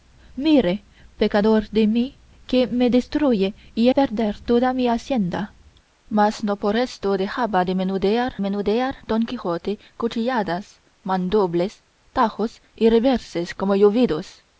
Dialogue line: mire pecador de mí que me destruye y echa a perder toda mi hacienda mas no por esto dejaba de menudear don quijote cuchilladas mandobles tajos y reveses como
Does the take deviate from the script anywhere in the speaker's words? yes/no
yes